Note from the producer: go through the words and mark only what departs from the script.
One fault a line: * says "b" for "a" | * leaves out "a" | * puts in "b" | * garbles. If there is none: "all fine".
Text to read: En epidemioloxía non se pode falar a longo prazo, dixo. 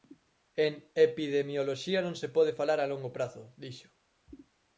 all fine